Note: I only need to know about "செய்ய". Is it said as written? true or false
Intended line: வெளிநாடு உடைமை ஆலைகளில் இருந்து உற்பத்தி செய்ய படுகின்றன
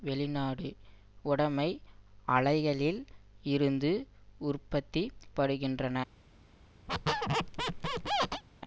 false